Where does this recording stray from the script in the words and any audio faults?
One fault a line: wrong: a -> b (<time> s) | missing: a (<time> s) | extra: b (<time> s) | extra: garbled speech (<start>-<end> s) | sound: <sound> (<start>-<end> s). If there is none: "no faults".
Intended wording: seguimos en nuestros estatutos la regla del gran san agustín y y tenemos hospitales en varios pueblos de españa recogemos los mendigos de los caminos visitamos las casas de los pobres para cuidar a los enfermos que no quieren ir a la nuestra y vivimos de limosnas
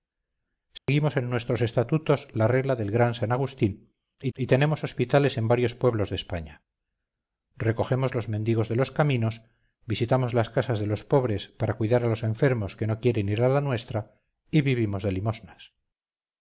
sound: dropout (0.8-0.9 s)